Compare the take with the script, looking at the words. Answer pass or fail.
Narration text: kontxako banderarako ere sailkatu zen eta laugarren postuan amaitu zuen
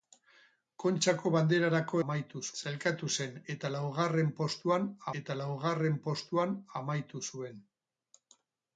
fail